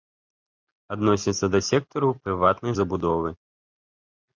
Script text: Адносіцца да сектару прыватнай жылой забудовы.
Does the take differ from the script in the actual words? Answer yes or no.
yes